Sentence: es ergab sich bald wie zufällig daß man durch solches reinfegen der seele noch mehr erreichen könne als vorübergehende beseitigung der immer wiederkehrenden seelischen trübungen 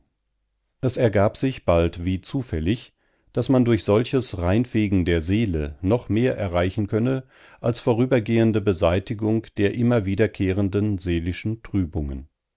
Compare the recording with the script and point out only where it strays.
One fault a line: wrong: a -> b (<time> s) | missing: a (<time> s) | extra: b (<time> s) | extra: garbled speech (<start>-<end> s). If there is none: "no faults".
no faults